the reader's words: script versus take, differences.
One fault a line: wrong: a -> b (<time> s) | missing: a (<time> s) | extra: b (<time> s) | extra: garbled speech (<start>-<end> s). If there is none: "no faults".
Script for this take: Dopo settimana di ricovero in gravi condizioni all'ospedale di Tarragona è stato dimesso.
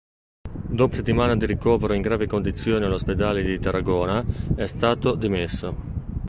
no faults